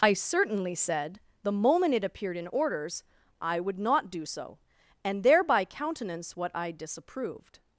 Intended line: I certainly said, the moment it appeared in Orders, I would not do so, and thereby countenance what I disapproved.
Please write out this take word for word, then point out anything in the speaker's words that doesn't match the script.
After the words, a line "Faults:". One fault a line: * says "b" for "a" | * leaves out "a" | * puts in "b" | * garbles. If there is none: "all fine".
I certainly said, the moment it appeared in Orders, I would not do so, and thereby countenance what I disapproved.
Faults:
all fine